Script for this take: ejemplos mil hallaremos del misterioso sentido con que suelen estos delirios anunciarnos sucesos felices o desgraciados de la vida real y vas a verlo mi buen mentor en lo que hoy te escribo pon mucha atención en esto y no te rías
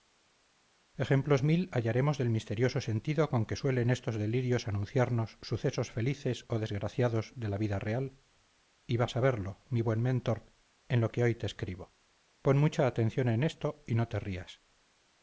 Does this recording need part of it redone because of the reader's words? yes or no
no